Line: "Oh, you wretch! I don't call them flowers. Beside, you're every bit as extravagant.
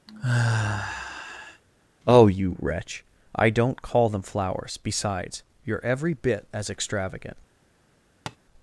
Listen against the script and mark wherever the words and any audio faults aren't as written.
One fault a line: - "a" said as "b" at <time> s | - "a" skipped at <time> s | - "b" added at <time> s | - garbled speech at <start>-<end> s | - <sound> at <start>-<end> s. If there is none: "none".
- sigh at 0.1-1.6 s
- "Beside" said as "Besides" at 4.8 s
- tap at 8.3-8.4 s